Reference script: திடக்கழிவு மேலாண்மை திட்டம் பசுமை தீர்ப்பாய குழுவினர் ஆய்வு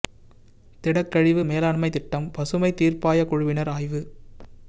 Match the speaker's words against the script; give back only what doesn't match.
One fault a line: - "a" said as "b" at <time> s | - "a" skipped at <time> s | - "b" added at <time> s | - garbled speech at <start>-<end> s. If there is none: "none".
none